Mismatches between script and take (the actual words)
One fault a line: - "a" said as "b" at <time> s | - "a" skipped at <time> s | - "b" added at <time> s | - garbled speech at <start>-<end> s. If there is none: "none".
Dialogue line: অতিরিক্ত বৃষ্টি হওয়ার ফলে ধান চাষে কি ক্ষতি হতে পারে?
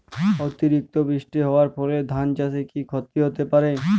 none